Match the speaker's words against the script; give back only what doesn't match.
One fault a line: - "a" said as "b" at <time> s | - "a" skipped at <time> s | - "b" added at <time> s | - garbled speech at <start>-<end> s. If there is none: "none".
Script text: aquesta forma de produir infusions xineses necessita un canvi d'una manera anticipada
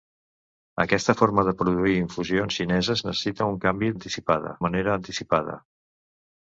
- "d'una" said as "anticipada" at 3.9 s